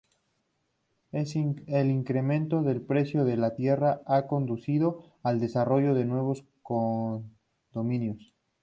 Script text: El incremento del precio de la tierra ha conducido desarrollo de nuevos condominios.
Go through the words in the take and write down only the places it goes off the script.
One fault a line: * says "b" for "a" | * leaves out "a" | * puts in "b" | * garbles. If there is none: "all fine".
* puts in "al"